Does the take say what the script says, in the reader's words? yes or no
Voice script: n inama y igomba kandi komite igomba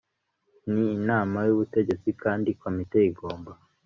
no